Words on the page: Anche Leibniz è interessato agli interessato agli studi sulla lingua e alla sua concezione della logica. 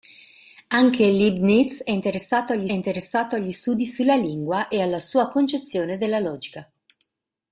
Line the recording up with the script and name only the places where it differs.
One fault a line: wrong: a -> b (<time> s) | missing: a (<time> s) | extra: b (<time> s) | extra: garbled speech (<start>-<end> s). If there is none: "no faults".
no faults